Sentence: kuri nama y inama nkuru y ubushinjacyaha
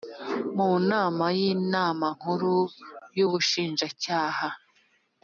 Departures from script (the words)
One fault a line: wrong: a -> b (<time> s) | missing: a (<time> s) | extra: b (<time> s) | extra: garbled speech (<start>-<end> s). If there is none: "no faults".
wrong: kuri -> mu (0.6 s)